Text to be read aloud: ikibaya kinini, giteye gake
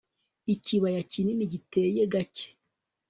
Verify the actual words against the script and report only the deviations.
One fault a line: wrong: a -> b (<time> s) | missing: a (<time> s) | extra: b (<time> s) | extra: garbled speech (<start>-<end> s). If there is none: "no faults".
no faults